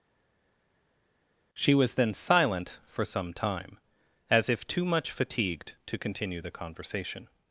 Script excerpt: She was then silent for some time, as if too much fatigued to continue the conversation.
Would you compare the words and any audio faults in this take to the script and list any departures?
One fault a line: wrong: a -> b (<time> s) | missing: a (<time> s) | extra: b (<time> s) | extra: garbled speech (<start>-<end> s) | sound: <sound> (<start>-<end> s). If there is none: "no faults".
no faults